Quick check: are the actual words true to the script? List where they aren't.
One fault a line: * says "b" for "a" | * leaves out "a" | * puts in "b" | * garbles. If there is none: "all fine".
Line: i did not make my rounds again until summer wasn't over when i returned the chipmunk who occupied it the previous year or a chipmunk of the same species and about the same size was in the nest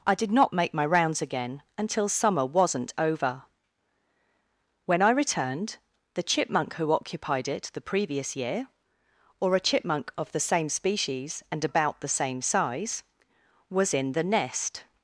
all fine